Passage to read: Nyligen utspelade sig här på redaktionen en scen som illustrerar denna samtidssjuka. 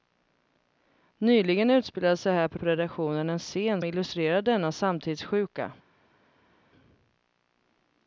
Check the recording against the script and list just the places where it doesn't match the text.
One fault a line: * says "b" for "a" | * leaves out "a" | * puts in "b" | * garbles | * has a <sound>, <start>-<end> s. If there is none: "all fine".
* puts in "på"
* leaves out "som"